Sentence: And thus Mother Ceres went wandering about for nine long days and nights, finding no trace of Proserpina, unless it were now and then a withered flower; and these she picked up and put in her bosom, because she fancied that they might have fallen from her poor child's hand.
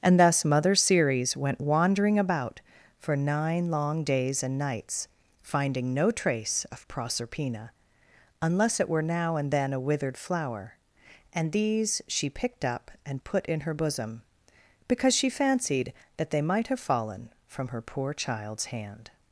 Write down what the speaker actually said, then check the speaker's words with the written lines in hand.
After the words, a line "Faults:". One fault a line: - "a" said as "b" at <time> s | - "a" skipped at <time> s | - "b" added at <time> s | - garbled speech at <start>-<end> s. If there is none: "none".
And thus Mother Ceres went wandering about for nine long days and nights, finding no trace of Proserpina, unless it were now and then a withered flower; and these she picked up and put in her bosom, because she fancied that they might have fallen from her poor child's hand.
Faults:
none